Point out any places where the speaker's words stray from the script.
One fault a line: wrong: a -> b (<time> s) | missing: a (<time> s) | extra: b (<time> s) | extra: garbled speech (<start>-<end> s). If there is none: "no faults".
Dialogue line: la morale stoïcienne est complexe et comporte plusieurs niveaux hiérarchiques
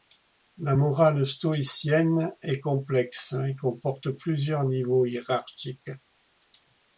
no faults